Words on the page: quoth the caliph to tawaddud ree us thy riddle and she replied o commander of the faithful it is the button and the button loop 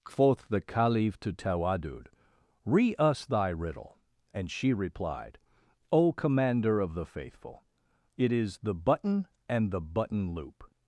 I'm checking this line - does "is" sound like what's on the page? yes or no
yes